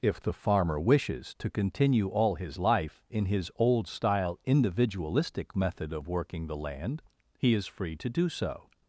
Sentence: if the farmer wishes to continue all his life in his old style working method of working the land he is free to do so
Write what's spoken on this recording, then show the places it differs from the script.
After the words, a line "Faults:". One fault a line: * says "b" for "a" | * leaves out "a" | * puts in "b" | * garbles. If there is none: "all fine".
if the farmer wishes to continue all his life in his old style individualistic method of working the land he is free to do so
Faults:
* says "individualistic" for "working"